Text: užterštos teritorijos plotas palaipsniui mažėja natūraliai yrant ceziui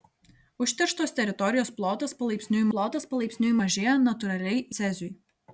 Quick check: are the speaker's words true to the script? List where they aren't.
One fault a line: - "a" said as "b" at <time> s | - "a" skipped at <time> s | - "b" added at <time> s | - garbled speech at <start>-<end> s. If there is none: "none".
- "plotas palaipsniui" added at 2.7 s
- "yrant" skipped at 4.7 s